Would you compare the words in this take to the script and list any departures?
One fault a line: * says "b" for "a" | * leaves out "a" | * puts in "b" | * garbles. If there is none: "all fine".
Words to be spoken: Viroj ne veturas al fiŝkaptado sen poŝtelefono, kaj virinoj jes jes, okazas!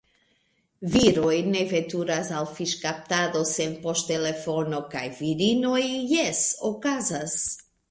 * leaves out "jes"